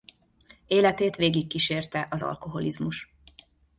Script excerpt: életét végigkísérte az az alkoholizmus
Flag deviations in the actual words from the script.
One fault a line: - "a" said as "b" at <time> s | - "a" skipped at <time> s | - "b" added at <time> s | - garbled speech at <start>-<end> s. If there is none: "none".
- "az" skipped at 2.2 s